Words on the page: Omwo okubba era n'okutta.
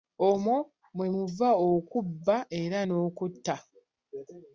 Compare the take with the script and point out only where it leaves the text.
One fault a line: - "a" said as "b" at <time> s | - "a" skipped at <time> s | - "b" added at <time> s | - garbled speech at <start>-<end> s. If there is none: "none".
- "mwe muva" added at 0.9 s